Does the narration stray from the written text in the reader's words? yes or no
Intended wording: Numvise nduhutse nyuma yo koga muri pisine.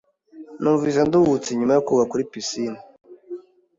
no